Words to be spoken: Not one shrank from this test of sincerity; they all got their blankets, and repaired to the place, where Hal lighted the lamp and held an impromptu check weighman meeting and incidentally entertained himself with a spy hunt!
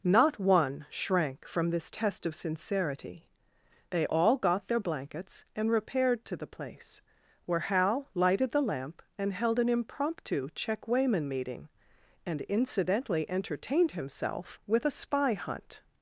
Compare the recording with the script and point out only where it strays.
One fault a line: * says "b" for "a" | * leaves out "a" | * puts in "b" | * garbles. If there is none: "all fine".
all fine